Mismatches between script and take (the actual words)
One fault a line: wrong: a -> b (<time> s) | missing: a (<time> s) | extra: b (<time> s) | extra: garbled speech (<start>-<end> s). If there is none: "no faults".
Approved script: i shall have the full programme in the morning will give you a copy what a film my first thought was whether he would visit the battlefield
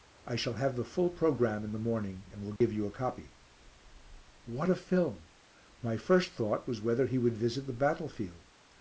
extra: and (2.3 s)